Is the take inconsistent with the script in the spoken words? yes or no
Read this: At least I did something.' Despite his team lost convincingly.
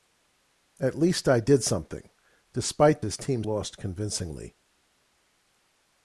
no